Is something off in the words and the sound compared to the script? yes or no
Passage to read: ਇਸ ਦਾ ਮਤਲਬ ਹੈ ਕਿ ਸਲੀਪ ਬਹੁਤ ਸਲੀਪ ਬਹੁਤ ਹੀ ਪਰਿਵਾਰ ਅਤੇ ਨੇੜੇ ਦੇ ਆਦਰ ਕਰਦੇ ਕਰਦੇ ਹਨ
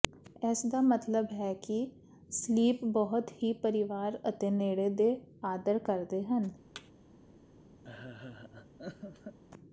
yes